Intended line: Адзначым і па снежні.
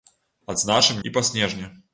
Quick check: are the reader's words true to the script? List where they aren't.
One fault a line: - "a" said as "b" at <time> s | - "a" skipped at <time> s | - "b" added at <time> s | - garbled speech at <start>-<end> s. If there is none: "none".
none